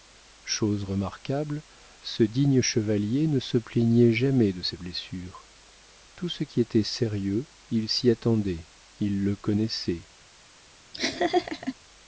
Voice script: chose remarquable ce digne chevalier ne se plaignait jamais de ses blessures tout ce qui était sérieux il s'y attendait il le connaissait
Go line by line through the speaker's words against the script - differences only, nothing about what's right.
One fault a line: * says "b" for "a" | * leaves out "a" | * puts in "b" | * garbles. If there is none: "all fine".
all fine